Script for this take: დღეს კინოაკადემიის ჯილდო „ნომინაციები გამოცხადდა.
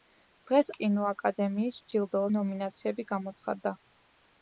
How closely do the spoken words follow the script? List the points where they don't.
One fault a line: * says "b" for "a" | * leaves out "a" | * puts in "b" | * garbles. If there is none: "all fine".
all fine